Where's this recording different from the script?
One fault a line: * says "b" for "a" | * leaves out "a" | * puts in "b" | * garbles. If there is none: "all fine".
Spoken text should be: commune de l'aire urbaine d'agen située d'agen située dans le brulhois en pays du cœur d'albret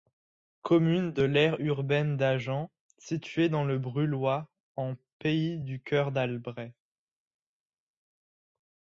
* leaves out "d'agen située"